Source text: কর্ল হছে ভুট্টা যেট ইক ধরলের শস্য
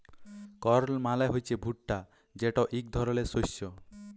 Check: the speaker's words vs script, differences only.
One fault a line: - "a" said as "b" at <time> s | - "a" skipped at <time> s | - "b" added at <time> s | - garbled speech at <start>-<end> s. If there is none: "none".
- "মালে" added at 1.0 s